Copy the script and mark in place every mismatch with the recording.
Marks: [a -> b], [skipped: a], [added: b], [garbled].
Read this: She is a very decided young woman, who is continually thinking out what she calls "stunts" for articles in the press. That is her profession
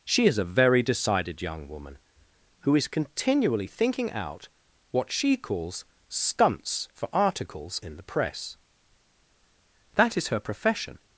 She is a very decided young woman, who is continually thinking out what she calls "stunts" for articles in the press. That is her profession